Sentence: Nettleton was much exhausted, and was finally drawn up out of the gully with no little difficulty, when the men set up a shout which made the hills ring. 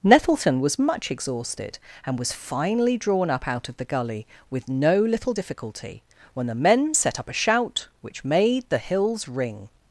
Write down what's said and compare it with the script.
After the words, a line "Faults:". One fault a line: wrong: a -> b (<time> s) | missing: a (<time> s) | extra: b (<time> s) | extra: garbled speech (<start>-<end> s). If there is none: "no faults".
Nettleton was much exhausted, and was finally drawn up out of the gully with no little difficulty, when the men set up a shout which made the hills ring.
Faults:
no faults